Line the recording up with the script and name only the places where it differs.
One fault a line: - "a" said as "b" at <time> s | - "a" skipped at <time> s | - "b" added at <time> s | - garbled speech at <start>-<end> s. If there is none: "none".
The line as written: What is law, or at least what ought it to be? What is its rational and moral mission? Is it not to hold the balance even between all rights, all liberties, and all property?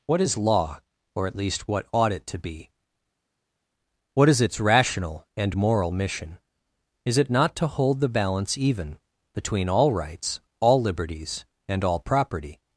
none